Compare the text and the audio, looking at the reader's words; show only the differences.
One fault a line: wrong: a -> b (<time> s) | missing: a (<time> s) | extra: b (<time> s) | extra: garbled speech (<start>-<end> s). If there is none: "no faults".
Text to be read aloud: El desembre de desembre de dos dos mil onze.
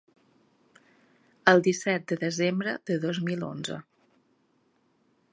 wrong: desembre -> disset (1.7 s)
missing: dos (3.2 s)